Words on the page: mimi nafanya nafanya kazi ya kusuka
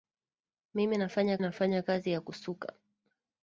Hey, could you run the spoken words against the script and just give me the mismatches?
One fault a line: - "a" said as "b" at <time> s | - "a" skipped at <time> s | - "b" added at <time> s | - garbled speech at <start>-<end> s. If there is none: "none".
none